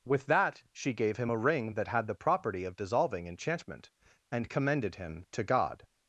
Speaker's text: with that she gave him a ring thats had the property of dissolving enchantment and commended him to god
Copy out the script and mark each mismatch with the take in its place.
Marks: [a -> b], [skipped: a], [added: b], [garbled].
with that she gave him a ring [thats -> that] had the property of dissolving enchantment and commended him to god